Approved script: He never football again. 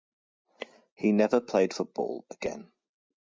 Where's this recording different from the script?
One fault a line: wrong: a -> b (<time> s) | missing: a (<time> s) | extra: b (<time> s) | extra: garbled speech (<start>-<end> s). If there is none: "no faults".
extra: played (1.4 s)